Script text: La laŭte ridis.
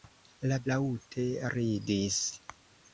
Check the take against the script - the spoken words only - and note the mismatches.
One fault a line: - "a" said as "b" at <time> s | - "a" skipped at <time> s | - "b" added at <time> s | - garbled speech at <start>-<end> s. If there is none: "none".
none